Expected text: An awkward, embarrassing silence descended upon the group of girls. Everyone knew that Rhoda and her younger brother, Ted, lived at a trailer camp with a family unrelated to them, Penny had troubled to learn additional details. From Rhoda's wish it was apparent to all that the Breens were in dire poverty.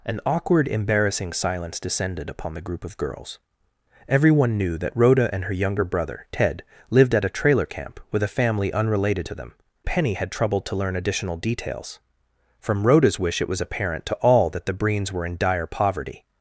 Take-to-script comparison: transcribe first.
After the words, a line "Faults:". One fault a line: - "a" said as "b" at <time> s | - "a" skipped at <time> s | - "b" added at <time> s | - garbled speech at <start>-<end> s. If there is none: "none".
An awkward, embarrassing silence descended upon the group of girls. Everyone knew that Rhoda and her younger brother, Ted, lived at a trailer camp with a family unrelated to them, Penny had troubled to learn additional details. From Rhoda's wish it was apparent to all that the Breens were in dire poverty.
Faults:
none